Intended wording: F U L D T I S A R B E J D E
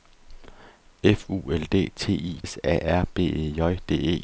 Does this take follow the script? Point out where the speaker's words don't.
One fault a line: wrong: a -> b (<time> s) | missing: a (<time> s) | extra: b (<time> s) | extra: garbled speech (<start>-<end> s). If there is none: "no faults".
no faults